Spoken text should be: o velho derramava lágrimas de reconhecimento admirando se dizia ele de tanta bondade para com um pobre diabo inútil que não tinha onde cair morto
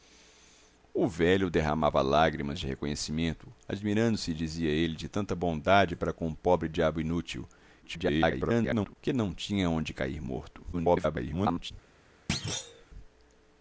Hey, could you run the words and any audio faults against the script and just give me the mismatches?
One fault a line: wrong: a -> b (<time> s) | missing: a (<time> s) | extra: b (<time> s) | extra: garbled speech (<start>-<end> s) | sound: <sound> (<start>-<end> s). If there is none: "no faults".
extra: garbled speech (7.8-9.0 s)
extra: garbled speech (10.7-11.7 s)
sound: thud (12.3-12.9 s)